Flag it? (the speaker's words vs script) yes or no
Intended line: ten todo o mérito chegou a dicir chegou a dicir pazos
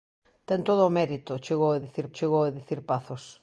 no